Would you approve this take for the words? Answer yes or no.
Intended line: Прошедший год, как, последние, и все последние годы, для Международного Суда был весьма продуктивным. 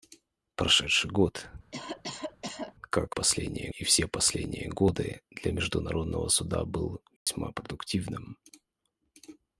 yes